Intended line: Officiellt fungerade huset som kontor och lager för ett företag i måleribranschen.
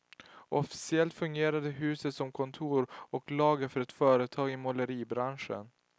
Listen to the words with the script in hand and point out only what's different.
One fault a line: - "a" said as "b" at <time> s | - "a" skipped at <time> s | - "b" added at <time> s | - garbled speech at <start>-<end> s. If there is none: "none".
none